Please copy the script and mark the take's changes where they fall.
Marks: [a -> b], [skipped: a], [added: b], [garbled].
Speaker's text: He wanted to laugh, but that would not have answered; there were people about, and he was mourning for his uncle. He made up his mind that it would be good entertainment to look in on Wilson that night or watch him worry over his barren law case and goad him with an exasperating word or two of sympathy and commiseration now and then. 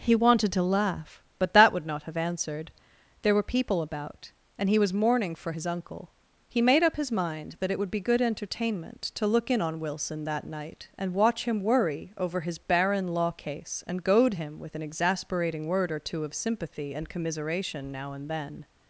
He wanted to laugh, but that would not have answered; there were people about, and he was mourning for his uncle. He made up his mind that it would be good entertainment to look in on Wilson that night [or -> and] watch him worry over his barren law case and goad him with an exasperating word or two of sympathy and commiseration now and then.